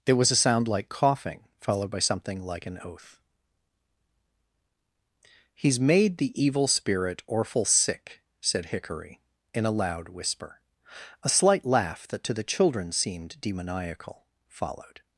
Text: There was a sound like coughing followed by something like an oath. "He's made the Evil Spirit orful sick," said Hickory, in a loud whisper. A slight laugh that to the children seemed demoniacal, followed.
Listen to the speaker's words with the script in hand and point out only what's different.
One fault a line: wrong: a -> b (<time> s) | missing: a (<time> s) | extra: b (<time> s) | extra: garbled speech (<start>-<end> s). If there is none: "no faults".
no faults